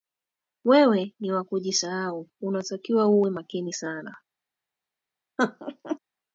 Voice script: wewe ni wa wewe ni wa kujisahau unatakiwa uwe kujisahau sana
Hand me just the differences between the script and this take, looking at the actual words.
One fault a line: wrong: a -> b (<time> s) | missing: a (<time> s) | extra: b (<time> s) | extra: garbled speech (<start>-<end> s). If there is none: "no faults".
missing: wewe ni wa (1.4 s)
wrong: kujisahau -> makini (3.3 s)